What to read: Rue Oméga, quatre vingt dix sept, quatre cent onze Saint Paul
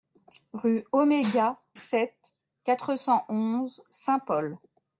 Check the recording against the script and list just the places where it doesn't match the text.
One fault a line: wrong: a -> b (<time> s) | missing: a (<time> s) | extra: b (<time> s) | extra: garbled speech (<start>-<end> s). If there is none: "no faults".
missing: quatre vingt dix (1.6 s)